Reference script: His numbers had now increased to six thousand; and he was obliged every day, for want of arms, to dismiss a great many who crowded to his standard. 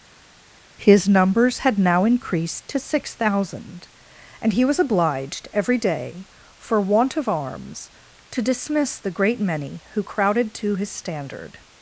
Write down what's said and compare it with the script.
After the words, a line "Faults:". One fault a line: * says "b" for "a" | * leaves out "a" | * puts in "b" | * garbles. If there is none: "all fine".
His numbers had now increased to six thousand; and he was obliged every day, for want of arms, to dismiss the great many who crowded to his standard.
Faults:
* says "the" for "a"